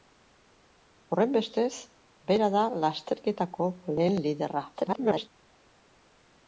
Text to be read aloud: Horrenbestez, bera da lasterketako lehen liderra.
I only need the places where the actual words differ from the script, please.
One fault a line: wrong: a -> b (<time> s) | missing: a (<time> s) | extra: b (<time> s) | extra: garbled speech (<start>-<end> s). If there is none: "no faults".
extra: garbled speech (4.7-5.3 s)